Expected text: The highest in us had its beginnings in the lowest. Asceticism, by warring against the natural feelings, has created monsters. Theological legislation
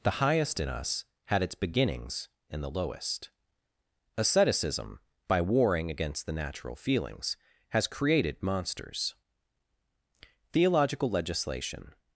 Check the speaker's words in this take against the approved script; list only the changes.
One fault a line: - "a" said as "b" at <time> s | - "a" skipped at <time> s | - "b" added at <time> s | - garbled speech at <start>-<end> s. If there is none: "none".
none